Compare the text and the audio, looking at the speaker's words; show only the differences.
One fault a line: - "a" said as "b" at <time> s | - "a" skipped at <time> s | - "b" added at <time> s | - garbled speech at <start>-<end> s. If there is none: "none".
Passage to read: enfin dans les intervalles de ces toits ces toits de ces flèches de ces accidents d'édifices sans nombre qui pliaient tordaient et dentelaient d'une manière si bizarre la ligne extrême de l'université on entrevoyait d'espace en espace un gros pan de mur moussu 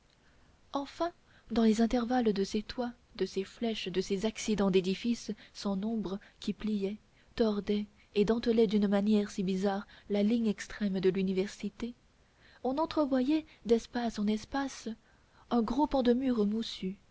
- "ces toits" skipped at 2.9 s